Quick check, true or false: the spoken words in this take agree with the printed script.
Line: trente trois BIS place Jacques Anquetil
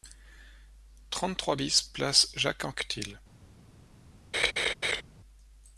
true